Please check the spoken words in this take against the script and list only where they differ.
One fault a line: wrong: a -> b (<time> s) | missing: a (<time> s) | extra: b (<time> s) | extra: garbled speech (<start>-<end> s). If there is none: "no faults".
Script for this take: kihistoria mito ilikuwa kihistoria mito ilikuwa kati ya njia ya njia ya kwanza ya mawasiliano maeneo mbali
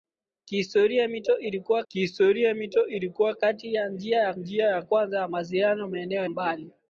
no faults